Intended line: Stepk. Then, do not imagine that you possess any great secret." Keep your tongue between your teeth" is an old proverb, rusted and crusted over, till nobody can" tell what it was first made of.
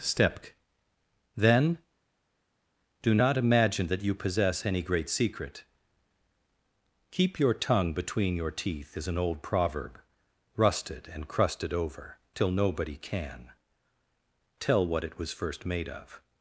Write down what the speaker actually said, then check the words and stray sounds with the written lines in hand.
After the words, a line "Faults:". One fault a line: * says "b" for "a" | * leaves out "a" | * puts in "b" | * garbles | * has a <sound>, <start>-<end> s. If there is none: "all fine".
Stepk. Then, do not imagine that you possess any great secret." Keep your tongue between your teeth" is an old proverb, rusted and crusted over, till nobody can" tell what it was first made of.
Faults:
all fine